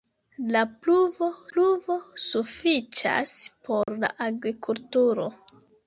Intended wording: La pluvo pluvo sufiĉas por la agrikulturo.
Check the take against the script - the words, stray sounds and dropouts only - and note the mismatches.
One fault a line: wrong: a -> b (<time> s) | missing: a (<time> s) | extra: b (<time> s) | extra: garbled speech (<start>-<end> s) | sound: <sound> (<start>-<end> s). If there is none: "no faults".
sound: dropout (3.8-3.9 s)